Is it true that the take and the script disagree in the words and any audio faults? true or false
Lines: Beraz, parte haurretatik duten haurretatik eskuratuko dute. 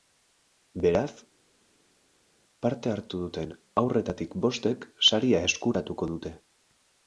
true